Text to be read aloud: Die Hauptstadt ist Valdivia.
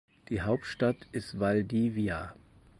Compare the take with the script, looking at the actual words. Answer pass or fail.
pass